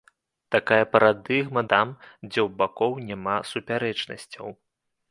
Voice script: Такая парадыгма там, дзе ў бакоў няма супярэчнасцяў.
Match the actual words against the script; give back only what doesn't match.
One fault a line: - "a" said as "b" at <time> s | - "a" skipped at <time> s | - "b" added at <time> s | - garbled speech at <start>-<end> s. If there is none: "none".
none